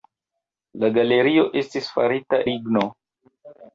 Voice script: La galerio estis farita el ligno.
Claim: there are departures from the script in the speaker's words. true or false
true